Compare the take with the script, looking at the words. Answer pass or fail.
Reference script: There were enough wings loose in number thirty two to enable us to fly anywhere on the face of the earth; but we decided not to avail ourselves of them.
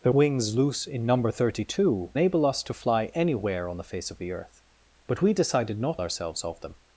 fail